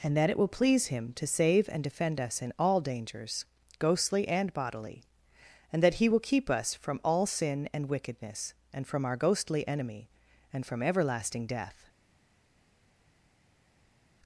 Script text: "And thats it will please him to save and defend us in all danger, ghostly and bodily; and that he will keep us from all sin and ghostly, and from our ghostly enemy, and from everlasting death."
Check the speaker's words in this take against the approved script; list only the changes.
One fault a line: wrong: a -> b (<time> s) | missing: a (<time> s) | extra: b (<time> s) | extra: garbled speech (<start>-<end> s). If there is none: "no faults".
wrong: thats -> that (0.2 s)
wrong: danger -> dangers (2.8 s)
wrong: ghostly -> wickedness (7.9 s)